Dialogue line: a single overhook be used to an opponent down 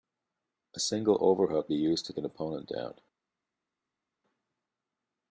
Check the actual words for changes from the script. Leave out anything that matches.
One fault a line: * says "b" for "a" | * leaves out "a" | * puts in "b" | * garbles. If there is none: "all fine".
all fine